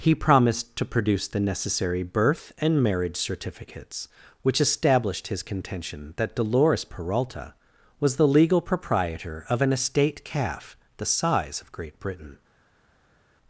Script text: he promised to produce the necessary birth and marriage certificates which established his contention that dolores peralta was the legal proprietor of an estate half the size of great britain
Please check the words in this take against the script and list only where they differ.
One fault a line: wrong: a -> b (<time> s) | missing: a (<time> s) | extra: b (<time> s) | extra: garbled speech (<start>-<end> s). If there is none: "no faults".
wrong: half -> calf (10.2 s)